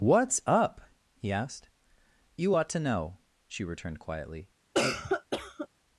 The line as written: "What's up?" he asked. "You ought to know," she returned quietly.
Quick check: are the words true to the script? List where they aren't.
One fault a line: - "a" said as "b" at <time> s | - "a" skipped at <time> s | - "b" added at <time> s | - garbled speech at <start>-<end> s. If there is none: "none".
none